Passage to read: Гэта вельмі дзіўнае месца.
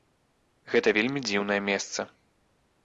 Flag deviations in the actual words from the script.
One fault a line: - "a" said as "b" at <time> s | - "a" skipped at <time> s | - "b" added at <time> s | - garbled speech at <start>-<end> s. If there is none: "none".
none